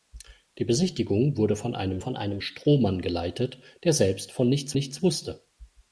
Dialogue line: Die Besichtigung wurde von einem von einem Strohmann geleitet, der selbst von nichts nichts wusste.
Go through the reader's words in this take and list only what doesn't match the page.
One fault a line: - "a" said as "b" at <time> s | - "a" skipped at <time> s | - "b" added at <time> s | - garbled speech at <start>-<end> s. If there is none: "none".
none